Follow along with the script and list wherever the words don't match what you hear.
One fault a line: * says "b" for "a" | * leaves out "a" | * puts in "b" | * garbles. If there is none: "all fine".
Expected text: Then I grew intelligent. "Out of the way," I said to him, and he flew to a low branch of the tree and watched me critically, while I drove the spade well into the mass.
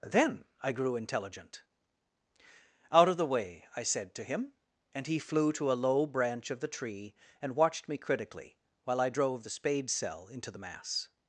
* says "cell" for "well"